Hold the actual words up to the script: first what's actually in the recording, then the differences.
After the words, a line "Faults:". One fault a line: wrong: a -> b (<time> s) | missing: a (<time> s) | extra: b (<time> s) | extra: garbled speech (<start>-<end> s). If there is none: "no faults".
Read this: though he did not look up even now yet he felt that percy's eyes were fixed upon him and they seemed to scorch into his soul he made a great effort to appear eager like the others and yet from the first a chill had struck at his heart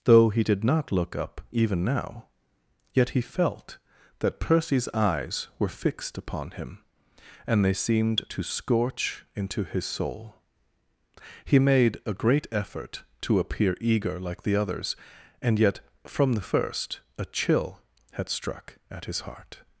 though he did not look up even now yet he felt that percy's eyes were fixed upon him and they seemed to scorch into his soul he made a great effort to appear eager like the others and yet from the first a chill had struck at his heart
Faults:
no faults